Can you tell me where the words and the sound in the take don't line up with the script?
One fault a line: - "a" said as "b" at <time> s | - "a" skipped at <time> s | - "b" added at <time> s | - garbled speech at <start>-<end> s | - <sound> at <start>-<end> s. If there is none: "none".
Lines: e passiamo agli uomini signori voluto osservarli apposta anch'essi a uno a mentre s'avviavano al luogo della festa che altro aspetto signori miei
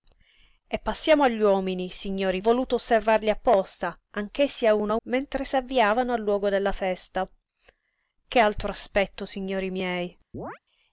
- chirp at 10.3-10.6 s